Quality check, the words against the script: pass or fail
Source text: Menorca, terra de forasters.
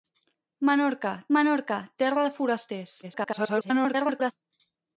fail